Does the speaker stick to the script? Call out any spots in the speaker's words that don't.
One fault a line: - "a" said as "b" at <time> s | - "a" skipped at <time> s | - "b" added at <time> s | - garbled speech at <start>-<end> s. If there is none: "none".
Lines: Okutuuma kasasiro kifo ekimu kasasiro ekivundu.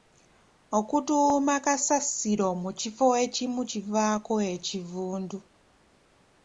- "mu" added at 2.6 s
- "kasasiro" said as "kivaako" at 3.7 s